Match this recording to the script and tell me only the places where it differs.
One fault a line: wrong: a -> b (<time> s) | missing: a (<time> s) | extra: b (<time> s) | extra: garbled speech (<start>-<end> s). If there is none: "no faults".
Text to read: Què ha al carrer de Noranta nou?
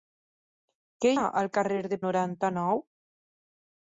no faults